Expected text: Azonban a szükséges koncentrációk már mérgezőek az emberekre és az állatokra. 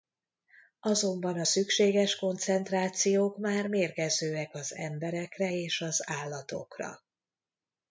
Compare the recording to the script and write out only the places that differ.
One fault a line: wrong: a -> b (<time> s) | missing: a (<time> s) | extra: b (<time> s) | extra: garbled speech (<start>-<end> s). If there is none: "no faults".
no faults